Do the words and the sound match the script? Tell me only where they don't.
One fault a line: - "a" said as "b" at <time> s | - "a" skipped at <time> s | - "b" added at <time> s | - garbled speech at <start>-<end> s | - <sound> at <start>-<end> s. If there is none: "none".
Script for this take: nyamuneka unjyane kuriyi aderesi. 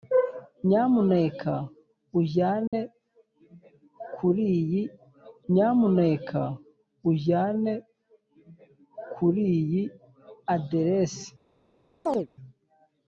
- dropout at 2.7-2.7 s
- "nyamuneka unjyane kuriyi" added at 5.5 s
- chirp at 12.1-12.3 s